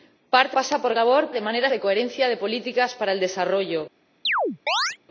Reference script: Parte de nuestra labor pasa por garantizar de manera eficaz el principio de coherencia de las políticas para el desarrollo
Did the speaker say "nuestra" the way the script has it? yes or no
no